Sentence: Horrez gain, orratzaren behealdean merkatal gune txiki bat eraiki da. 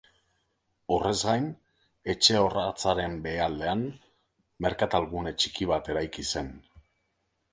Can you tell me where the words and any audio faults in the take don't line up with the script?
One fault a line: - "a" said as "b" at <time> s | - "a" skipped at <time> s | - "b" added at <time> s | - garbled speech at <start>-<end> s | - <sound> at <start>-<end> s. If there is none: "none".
- "etxe" added at 2.1 s
- "da" said as "zen" at 6.4 s